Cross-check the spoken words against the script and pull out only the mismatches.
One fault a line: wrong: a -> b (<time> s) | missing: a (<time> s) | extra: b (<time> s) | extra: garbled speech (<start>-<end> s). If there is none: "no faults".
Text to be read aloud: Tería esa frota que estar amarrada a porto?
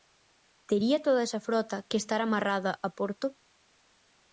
extra: toda (1.1 s)